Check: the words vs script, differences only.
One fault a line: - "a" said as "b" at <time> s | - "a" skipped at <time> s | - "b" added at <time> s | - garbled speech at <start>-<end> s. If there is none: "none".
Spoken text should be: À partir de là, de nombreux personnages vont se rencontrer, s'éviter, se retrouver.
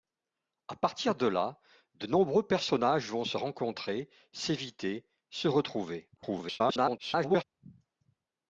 - garbled speech at 6.2-7.4 s